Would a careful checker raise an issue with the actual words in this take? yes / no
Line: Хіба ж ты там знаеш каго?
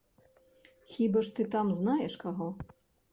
no